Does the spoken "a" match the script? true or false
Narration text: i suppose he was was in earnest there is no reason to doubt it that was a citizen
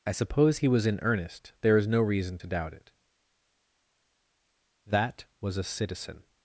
true